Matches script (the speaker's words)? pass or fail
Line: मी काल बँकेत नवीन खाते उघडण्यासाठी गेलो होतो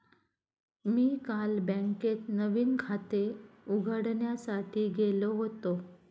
pass